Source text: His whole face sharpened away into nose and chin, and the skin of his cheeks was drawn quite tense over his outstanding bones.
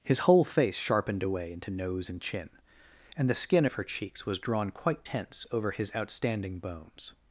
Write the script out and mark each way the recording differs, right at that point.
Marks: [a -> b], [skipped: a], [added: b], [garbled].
His whole face sharpened away into nose and chin, and the skin of [his -> her] cheeks was drawn quite tense over his outstanding bones.